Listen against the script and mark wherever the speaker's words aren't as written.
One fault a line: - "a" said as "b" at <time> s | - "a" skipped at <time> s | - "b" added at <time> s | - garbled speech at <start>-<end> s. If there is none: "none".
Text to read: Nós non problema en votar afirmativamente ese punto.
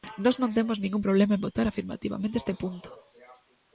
- "temos ningún" added at 0.6 s
- "ese" said as "este" at 2.4 s